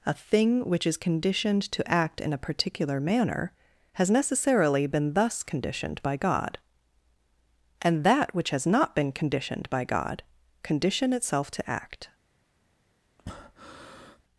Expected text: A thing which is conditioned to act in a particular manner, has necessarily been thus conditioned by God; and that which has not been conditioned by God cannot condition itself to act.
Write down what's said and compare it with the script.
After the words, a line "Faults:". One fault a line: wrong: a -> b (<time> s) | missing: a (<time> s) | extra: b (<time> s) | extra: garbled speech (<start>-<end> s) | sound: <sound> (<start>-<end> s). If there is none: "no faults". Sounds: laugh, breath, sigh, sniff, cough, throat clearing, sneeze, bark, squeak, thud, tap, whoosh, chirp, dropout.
A thing which is conditioned to act in a particular manner, has necessarily been thus conditioned by God; and that which has not been conditioned by God condition itself to act.
Faults:
missing: cannot (10.2 s)
sound: breath (13.2-14.2 s)